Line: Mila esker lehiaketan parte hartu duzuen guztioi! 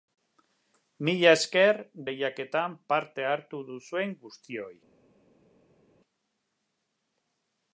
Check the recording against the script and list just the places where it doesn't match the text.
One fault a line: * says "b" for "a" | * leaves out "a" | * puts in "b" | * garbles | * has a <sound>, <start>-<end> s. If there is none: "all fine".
all fine